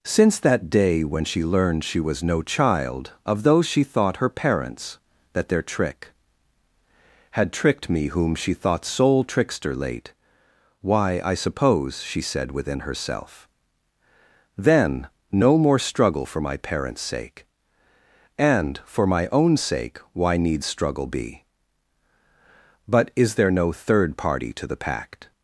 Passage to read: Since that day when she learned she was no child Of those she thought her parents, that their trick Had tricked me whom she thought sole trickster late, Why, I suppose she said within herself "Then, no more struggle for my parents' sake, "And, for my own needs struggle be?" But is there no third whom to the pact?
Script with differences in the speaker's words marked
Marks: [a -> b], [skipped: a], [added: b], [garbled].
Since that day when she learned she was no child Of those she thought her parents, that their trick Had tricked me whom she thought sole trickster late, Why, I suppose she said within herself "Then, no more struggle for my parents' sake, "And, for my own [added: sake why] needs struggle be?" But is there no third [whom -> party] to the pact?